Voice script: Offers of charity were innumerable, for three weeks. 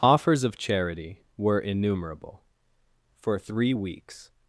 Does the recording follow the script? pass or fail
pass